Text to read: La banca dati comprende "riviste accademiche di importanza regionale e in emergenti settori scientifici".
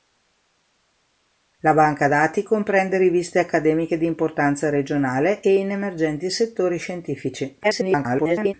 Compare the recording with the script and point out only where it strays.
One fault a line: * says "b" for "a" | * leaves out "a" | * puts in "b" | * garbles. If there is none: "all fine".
* garbles